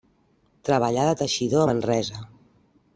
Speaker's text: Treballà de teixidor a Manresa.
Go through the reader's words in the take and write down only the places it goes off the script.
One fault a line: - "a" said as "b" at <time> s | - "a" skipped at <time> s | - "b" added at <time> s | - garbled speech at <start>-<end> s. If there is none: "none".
none